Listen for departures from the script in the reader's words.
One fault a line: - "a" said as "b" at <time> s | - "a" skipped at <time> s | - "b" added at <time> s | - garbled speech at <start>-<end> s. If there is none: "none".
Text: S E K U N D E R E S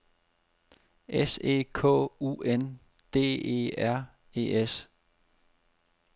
none